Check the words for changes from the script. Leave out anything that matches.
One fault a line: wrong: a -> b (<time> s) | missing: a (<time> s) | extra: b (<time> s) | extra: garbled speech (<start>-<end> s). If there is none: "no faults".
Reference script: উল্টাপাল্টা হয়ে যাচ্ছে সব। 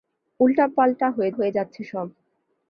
extra: হয়ে (1.3 s)